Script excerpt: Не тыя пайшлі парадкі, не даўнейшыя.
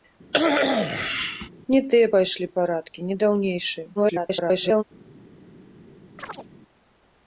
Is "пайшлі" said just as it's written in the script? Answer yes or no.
yes